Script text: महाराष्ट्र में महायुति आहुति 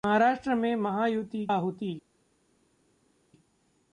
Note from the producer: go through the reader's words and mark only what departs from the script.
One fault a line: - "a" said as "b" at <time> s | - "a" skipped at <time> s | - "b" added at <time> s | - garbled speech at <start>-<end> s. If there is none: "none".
none